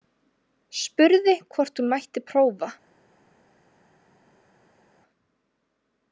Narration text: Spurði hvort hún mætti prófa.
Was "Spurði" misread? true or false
false